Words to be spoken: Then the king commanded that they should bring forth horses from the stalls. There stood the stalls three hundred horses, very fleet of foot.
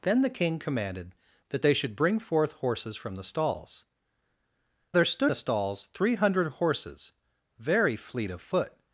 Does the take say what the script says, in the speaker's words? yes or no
yes